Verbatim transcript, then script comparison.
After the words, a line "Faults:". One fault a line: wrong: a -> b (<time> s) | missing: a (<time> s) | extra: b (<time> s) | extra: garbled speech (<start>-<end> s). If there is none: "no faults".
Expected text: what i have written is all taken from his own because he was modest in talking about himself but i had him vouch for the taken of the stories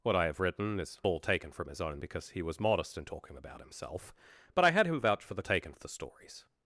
what i have written is all taken from his own because he was modest in talking about himself but i had him vouch for the taken of the stories
Faults:
no faults